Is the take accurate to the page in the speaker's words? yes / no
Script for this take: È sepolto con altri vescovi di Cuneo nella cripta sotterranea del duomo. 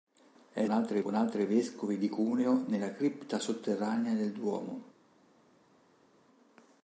no